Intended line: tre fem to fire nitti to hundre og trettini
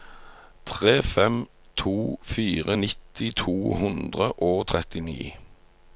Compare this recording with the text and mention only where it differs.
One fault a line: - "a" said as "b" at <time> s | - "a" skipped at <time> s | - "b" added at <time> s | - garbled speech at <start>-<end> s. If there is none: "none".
none